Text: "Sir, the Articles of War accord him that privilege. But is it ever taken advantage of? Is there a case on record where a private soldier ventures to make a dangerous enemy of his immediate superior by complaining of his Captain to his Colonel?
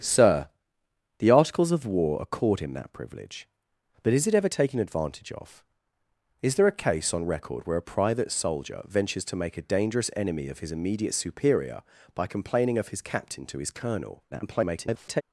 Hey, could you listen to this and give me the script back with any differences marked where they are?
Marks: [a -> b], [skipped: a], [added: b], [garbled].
"Sir, the Articles of War accord him that privilege. But is it ever taken advantage of? Is there a case on record where a private soldier ventures to make a dangerous enemy of his immediate superior by complaining of his Captain to his Colonel? [garbled]